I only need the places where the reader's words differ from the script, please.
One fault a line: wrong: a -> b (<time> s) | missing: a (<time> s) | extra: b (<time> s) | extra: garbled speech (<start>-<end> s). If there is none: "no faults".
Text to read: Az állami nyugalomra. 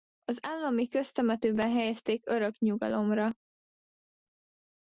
extra: köztemetőben helyezték örök (0.9 s)